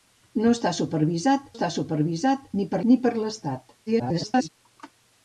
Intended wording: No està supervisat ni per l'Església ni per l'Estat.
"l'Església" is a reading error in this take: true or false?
true